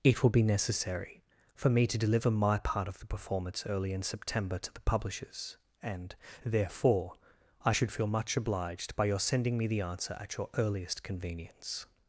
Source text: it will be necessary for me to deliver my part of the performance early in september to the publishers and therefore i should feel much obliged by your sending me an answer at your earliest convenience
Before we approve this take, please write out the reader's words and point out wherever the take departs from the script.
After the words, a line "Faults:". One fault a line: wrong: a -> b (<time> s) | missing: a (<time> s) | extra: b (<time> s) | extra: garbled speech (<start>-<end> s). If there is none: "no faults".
it will be necessary for me to deliver my part of the performance early in september to the publishers and therefore i should feel much obliged by your sending me the answer at your earliest convenience
Faults:
wrong: an -> the (9.7 s)